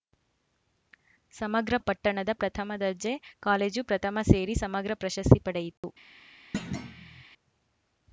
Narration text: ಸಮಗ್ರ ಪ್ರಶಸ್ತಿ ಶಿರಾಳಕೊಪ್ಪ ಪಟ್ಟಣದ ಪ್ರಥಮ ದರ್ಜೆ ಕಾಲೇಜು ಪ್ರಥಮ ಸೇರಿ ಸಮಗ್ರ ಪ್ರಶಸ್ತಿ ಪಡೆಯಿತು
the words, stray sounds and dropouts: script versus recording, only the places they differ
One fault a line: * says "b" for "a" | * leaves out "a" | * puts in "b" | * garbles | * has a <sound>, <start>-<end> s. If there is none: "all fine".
* leaves out "ಪ್ರಶಸ್ತಿ ಶಿರಾಳಕೊಪ್ಪ"
* has a dropout, 5.8-5.8 s
* has a thud, 6.5-7.2 s